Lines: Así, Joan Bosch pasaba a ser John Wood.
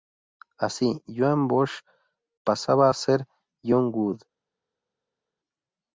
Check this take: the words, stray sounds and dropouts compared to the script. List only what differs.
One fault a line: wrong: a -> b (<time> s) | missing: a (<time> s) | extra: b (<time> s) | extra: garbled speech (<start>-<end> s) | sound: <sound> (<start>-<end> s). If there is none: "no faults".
no faults